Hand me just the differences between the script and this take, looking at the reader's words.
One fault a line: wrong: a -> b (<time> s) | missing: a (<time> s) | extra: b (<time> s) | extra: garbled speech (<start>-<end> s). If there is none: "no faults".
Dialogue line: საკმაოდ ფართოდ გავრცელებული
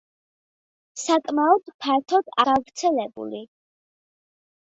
no faults